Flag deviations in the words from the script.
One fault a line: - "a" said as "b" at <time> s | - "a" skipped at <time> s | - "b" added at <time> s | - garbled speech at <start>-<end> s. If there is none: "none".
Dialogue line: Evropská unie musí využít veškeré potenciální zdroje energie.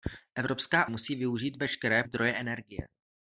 - "unie" skipped at 0.9 s
- "potenciální" skipped at 2.0 s